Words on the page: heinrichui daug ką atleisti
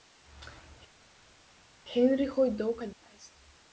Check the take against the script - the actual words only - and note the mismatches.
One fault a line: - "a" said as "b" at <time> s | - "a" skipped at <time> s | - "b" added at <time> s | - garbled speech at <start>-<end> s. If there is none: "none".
none